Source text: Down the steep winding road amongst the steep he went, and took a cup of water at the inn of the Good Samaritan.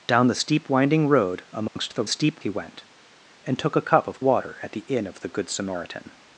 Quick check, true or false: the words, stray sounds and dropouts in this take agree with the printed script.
false